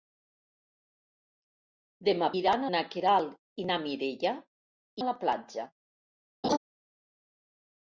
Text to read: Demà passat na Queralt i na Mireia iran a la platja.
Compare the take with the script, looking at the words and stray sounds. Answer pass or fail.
fail